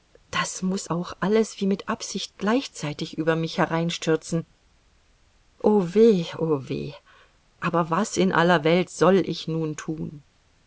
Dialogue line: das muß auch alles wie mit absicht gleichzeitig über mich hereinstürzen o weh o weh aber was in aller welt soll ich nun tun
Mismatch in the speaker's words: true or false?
false